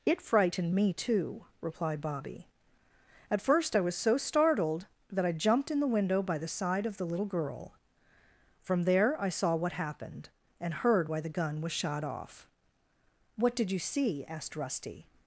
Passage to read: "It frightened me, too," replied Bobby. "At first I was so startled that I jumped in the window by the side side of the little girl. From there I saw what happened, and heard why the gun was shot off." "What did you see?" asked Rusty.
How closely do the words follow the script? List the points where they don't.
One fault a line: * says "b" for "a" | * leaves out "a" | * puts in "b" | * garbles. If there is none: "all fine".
* leaves out "side"